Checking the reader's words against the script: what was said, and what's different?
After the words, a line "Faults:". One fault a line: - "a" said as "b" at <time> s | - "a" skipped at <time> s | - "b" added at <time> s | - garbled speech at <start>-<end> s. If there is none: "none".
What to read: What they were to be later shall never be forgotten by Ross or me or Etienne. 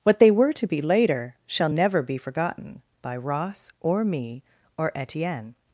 What they were to be later shall never be forgotten by Ross or me or Etienne.
Faults:
none